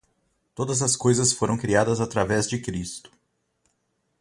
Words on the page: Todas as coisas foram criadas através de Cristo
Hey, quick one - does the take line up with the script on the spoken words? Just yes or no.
yes